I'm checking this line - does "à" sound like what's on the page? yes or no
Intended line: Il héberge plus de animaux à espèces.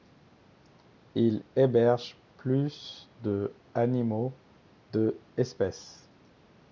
no